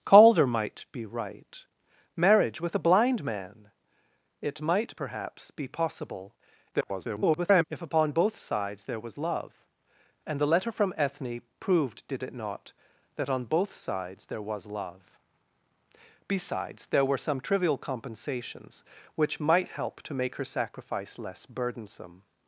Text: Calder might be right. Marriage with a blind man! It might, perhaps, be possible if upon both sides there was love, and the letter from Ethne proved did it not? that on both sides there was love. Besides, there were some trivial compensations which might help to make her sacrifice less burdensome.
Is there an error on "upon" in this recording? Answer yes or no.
no